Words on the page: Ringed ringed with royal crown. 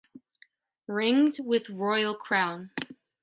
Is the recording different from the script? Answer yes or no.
yes